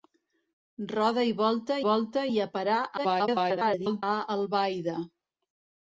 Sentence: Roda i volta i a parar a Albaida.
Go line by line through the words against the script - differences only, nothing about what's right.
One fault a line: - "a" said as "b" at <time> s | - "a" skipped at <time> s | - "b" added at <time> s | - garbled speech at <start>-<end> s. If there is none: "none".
- "volta" added at 1.9 s
- garbled speech at 3.0-4.0 s